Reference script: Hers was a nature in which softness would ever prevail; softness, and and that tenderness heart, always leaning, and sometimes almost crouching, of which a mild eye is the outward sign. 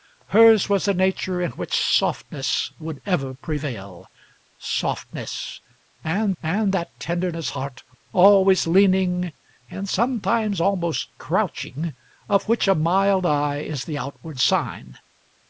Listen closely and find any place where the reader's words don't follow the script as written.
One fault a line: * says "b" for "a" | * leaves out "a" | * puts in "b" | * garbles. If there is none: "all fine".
all fine